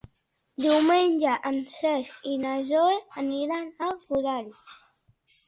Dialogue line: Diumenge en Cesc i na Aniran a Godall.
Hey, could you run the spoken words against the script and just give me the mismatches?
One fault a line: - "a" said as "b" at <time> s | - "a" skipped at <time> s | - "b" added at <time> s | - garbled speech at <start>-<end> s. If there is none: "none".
- "Zoè" added at 2.7 s